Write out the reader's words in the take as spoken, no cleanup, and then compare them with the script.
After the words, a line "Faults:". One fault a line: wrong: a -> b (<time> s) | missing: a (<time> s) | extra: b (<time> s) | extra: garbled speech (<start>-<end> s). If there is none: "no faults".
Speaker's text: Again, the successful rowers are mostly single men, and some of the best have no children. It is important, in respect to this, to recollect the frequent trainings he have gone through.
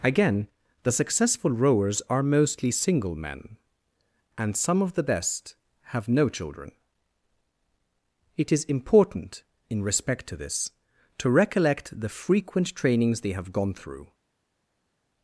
Again, the successful rowers are mostly single men, and some of the best have no children. It is important, in respect to this, to recollect the frequent trainings they have gone through.
Faults:
wrong: he -> they (13.2 s)